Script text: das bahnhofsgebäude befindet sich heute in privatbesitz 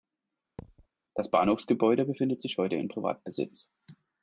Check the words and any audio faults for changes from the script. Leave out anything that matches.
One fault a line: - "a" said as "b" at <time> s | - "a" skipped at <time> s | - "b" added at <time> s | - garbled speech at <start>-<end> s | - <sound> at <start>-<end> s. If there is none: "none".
- thud at 0.6-0.9 s